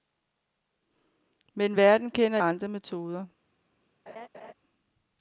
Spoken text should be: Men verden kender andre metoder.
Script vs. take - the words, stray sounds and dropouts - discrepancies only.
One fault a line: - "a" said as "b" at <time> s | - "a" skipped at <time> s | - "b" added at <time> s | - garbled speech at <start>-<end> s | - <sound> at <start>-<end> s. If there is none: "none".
- laugh at 4.1-4.5 s